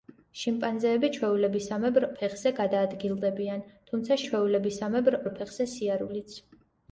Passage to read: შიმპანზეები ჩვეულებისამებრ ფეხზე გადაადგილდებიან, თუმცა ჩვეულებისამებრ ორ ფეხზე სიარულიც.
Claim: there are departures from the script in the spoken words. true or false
false